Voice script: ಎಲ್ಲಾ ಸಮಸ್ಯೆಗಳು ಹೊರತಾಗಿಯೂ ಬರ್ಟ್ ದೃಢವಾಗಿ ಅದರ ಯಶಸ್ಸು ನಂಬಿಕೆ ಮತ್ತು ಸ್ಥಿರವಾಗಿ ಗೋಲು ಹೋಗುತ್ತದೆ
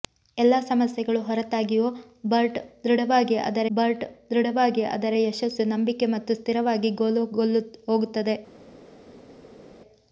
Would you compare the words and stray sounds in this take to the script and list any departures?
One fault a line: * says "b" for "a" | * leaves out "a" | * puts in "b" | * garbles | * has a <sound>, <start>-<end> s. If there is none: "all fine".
* puts in "ಬರ್ಟ್ ದೃಢವಾಗಿ ಅದರ"